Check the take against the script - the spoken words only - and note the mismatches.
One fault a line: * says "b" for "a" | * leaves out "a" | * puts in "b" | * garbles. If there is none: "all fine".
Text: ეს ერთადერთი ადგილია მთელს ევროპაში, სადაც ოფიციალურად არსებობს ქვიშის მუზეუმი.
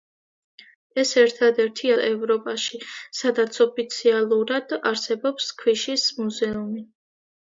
* leaves out "ადგილია მთელს"